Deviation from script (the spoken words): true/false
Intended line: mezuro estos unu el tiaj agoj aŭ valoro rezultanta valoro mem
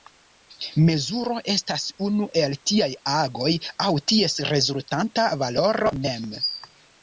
true